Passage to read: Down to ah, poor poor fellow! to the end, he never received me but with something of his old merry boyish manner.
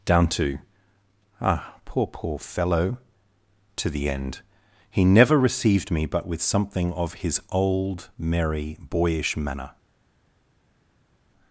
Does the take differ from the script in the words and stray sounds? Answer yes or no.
no